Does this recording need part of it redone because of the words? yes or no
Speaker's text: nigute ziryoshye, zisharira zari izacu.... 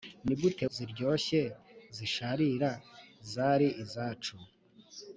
no